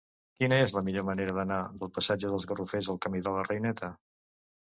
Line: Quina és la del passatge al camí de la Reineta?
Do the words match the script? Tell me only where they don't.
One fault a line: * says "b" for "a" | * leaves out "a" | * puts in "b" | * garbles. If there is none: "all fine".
* puts in "millor manera d'anar"
* puts in "dels Garrofers"